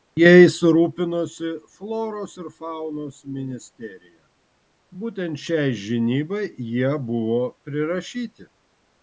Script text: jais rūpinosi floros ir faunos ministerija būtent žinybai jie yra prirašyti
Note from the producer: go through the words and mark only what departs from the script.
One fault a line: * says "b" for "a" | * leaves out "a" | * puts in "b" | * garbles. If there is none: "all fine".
* puts in "šiai"
* says "buvo" for "yra"